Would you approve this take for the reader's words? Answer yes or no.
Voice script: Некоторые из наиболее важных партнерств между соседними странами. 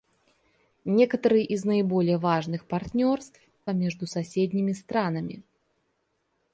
yes